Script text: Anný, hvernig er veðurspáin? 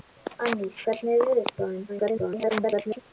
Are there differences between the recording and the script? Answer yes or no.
yes